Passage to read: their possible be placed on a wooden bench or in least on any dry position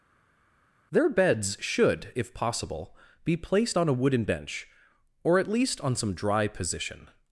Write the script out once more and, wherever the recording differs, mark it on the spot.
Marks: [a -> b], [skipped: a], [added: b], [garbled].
their [added: beds should if] possible be placed on a wooden bench or [in -> at] least on [any -> some] dry position